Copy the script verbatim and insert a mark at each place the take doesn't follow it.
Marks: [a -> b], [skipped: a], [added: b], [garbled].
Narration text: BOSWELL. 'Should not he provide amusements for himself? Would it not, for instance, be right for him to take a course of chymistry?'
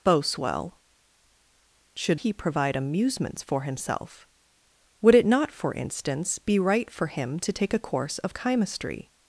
BOSWELL. 'Should [skipped: not] he provide amusements for himself? Would it not, for instance, be right for him to take a course of chymistry?'